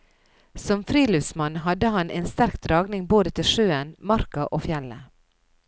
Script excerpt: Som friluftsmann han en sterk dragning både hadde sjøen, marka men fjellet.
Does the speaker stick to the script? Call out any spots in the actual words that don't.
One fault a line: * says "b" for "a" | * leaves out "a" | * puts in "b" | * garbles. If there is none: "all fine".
* puts in "hadde"
* says "til" for "hadde"
* says "og" for "men"